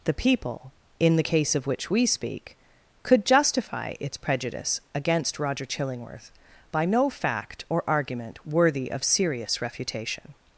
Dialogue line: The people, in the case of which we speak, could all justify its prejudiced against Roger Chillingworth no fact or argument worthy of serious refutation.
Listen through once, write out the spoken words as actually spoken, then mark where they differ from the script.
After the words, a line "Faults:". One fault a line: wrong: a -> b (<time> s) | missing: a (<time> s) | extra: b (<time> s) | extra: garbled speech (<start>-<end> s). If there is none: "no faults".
The people, in the case of which we speak, could justify its prejudice against Roger Chillingworth by no fact or argument worthy of serious refutation.
Faults:
missing: all (3.3 s)
wrong: prejudiced -> prejudice (4.2 s)
extra: by (6.7 s)